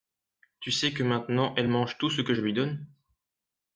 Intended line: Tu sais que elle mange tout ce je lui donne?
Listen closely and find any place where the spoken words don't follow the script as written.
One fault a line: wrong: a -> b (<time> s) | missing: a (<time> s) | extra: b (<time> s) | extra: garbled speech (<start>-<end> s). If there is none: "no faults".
extra: maintenant (1.0 s)
extra: que (2.2 s)